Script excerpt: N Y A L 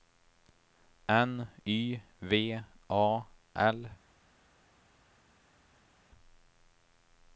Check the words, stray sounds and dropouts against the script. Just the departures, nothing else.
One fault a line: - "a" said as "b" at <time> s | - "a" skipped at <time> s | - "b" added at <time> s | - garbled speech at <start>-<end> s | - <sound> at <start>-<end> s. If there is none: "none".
- "V" added at 2.2 s